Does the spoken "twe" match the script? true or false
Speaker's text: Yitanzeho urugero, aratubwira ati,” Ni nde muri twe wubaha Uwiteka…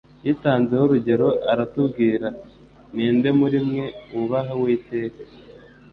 false